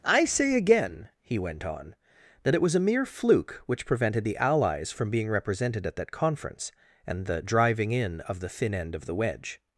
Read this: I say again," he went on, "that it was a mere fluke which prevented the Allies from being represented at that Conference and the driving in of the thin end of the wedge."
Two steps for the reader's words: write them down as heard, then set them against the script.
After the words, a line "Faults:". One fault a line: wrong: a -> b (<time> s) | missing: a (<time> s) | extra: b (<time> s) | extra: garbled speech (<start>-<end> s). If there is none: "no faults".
I say again," he went on, "that it was a mere fluke which prevented the Allies from being represented at that Conference and the driving in of the thin end of the wedge."
Faults:
no faults